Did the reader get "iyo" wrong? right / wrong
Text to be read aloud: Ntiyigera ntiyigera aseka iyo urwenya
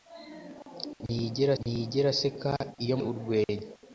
right